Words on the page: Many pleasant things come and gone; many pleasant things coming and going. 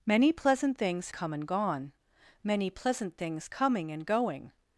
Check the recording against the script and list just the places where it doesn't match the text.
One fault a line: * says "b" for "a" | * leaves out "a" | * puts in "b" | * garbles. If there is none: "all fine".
all fine